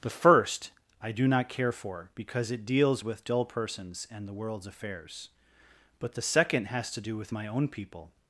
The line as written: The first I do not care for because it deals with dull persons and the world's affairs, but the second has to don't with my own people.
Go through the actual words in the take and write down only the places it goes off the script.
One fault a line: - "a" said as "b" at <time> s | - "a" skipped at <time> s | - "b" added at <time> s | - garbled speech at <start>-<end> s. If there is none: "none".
- "don't" said as "do" at 7.0 s